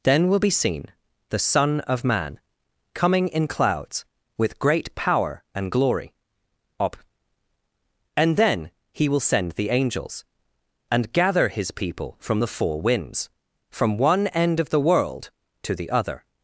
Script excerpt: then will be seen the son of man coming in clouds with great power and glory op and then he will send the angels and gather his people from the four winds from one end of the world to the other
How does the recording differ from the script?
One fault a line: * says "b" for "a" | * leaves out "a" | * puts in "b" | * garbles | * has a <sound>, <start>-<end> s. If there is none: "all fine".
all fine